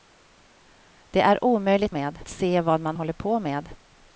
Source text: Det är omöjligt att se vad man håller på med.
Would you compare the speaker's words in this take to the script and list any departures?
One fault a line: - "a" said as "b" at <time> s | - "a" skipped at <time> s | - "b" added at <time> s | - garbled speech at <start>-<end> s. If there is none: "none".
- "att" said as "med" at 1.9 s